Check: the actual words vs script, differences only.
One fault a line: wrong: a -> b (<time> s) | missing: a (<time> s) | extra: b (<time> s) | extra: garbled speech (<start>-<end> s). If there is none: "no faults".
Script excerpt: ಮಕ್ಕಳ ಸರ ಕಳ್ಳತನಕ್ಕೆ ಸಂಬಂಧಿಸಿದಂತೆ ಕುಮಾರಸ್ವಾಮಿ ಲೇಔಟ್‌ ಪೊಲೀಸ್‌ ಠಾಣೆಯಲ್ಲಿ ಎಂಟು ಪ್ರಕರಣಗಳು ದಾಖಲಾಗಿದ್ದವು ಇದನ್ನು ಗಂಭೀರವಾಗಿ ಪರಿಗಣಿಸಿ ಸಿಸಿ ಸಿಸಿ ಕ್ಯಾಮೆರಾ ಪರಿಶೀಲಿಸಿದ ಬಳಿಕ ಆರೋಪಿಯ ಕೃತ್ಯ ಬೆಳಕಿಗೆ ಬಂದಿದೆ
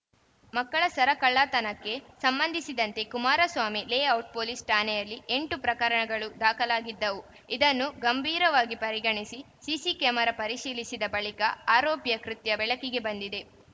missing: ಸಿಸಿ (9.9 s)